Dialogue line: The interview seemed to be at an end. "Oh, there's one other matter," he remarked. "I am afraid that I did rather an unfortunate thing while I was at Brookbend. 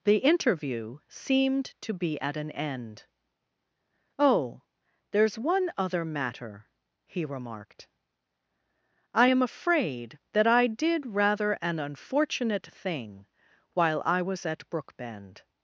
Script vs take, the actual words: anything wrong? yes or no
no